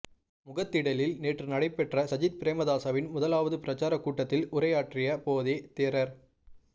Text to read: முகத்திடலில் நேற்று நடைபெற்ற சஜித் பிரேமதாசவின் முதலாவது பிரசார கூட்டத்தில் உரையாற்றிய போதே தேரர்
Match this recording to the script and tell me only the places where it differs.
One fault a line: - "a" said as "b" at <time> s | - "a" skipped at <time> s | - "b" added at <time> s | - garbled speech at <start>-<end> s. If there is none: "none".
none